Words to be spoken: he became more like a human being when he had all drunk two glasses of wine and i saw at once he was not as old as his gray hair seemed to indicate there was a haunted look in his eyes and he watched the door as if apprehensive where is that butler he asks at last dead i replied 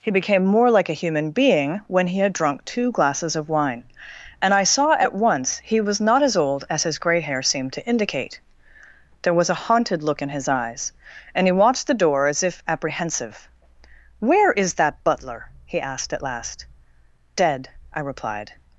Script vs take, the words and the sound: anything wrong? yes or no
yes